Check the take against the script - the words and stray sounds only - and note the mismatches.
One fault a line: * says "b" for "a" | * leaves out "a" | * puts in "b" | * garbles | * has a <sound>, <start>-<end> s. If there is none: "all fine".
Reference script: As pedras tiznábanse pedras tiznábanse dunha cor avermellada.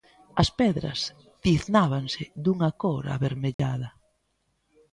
* leaves out "pedras tiznábanse"
* has a dropout, 3.5-3.6 s